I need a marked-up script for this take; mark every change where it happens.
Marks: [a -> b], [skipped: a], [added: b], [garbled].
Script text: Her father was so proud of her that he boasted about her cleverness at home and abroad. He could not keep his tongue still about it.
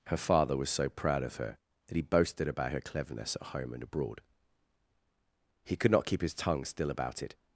Her father was so proud of her that he boasted about her cleverness at home and abroad. He could not keep his tongue still about it.